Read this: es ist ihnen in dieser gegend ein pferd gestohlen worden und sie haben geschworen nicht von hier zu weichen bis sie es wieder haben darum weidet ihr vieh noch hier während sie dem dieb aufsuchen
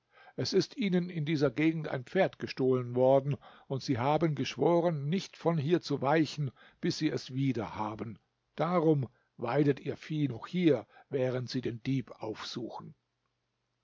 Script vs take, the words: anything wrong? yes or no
yes